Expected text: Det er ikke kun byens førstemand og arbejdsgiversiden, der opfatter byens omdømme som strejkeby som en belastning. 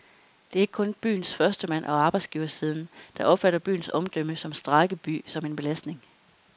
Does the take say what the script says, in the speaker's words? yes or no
yes